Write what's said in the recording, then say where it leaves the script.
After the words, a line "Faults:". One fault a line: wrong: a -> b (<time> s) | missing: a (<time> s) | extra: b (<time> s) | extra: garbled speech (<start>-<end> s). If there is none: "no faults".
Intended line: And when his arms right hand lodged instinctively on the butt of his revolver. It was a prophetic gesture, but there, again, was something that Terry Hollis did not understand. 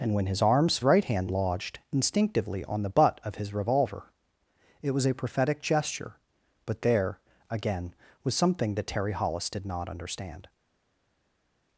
And when his arms right hand lodged instinctively on the butt of his revolver. It was a prophetic gesture, but there, again, was something that Terry Hollis did not understand.
Faults:
no faults